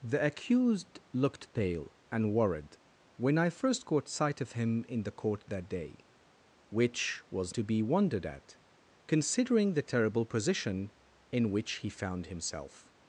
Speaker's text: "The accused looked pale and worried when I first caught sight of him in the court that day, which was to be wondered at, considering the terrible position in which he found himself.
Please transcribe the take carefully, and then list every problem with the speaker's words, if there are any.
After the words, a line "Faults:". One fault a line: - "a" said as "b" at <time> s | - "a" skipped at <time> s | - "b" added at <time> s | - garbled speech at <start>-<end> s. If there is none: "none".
"The accused looked pale and worried when I first caught sight of him in the court that day, which was to be wondered at, considering the terrible position in which he found himself.
Faults:
none